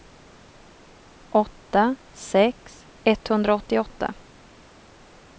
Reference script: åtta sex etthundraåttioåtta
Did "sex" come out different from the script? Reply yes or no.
no